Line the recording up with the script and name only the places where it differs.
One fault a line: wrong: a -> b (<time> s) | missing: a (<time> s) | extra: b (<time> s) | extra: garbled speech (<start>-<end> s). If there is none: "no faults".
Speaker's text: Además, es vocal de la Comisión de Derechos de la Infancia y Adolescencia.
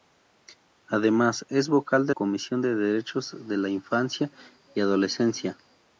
missing: la (2.1 s)